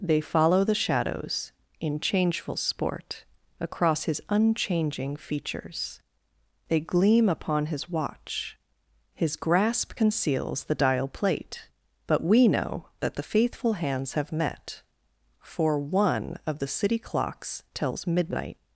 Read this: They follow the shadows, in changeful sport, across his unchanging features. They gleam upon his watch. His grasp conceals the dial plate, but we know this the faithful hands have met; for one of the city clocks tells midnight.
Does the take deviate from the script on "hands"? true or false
false